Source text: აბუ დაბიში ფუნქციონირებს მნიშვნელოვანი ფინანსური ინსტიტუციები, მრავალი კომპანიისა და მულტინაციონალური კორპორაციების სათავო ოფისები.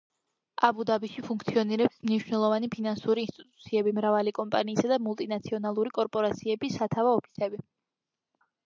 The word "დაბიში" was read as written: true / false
true